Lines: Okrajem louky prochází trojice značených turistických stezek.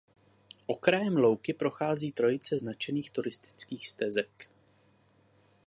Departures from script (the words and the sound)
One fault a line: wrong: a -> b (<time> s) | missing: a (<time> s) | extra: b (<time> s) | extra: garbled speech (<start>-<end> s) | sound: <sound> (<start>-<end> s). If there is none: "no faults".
no faults